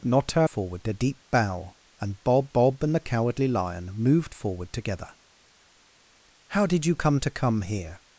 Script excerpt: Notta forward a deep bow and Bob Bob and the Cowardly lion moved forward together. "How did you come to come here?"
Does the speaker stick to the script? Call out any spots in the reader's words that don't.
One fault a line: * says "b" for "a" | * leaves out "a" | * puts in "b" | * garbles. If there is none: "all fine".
all fine